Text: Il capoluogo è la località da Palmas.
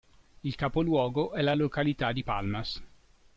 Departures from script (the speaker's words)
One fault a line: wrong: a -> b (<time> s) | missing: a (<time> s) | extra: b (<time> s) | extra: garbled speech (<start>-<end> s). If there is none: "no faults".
wrong: da -> di (2.1 s)